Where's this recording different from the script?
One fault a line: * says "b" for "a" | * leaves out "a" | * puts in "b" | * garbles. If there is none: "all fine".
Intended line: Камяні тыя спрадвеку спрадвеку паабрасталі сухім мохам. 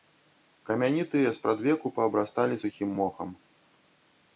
* leaves out "спрадвеку"